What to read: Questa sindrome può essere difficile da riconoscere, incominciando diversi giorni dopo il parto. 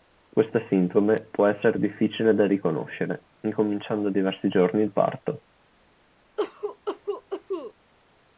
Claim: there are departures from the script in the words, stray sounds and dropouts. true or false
true